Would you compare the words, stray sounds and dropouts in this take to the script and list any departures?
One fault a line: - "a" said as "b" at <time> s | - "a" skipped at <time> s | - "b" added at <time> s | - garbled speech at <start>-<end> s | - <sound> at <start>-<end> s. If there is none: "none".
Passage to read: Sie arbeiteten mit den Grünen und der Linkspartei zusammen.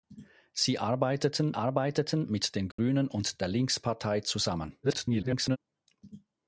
- "arbeiteten" added at 1.5 s
- dropout at 2.7-2.8 s
- garbled speech at 4.8-5.6 s